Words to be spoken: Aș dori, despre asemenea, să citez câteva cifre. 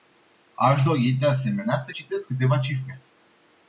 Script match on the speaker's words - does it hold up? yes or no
no